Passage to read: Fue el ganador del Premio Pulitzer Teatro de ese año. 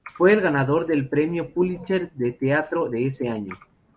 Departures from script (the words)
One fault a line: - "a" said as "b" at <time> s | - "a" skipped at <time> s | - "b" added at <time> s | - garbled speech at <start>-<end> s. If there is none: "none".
- "de" added at 2.1 s